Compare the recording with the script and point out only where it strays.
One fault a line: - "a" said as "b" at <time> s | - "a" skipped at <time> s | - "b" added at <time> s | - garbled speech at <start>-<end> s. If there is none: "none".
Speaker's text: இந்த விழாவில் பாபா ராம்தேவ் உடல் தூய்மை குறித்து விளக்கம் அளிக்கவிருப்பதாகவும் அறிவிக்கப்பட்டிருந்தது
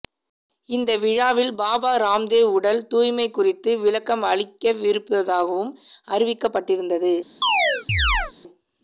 none